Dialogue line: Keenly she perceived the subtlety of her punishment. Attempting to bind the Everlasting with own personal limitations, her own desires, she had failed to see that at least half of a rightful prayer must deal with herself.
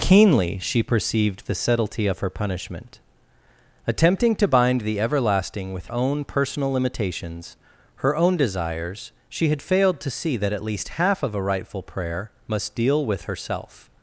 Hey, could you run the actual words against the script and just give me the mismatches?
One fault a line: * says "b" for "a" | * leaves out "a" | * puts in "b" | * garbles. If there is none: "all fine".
all fine